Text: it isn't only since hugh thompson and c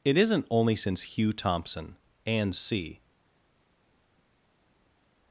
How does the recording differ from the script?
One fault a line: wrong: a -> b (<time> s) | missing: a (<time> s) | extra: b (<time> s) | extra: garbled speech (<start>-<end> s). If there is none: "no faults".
no faults